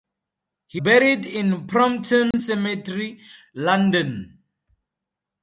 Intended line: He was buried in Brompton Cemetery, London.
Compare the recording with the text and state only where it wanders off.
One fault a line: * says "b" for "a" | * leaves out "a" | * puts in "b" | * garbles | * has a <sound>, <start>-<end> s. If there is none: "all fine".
* leaves out "was"
* has a dropout, 2.3-2.3 s